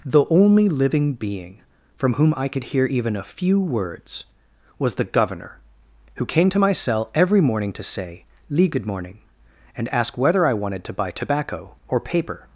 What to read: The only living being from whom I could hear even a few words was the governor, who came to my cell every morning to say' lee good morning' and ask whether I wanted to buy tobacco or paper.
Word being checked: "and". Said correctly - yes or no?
yes